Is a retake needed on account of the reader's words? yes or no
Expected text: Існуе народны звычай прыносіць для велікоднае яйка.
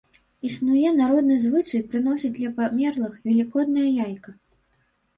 yes